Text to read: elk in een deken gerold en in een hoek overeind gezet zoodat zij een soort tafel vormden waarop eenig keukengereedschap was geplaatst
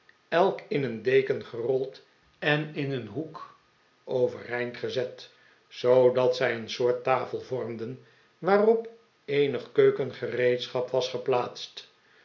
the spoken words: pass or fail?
pass